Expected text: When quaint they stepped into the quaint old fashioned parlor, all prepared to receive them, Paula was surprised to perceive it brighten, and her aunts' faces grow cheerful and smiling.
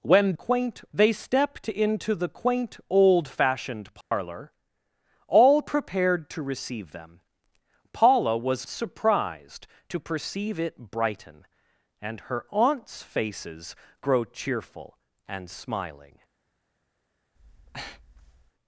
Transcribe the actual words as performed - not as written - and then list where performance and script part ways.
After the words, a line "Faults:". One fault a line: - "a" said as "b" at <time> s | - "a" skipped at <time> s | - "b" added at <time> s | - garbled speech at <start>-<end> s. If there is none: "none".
When quaint they stepped into the quaint old fashioned parlor, all prepared to receive them, Paula was surprised to perceive it brighten, and her aunts' faces grow cheerful and smiling.
Faults:
none